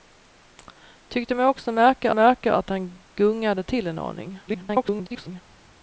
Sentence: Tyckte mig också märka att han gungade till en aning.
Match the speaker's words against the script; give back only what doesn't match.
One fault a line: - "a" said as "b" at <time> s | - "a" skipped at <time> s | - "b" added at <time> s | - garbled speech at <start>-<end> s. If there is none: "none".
- "märka" added at 2.1 s
- garbled speech at 4.5-5.4 s